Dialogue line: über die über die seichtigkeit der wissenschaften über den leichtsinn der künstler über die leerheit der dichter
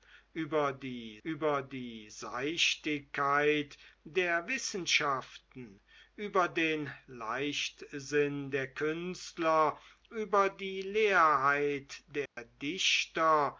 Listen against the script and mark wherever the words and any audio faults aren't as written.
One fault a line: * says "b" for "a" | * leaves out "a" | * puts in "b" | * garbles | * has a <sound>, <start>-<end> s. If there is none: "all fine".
* has a dropout, 12.3-12.4 s